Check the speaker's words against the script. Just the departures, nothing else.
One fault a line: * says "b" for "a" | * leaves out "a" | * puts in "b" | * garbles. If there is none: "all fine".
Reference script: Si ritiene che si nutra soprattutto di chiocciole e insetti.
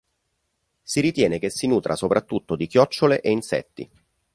all fine